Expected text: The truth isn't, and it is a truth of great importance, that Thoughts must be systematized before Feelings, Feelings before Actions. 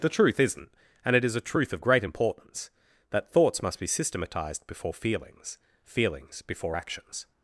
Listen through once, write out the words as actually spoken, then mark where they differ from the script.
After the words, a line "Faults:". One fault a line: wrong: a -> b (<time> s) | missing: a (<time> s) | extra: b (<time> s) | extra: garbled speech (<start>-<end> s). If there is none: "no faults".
The truth isn't, and it is a truth of great importance, that Thoughts must be systematized before Feelings, Feelings before Actions.
Faults:
no faults